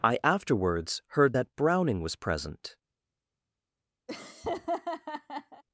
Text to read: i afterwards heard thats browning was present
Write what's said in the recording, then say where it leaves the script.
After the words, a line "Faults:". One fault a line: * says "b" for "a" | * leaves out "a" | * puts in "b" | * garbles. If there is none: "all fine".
i afterwards heard that browning was present
Faults:
* says "that" for "thats"